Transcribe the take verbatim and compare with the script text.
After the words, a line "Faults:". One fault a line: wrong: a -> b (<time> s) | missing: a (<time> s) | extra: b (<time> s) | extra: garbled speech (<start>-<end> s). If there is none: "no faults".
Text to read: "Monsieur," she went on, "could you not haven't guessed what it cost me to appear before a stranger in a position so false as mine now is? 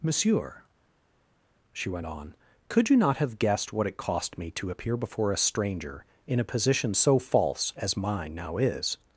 "Monsieur," she went on, "could you not have guessed what it cost me to appear before a stranger in a position so false as mine now is?
Faults:
wrong: haven't -> have (3.2 s)